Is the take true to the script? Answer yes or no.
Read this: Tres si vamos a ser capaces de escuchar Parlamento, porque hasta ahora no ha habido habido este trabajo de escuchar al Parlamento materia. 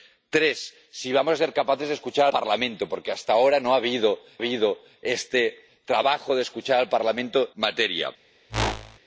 yes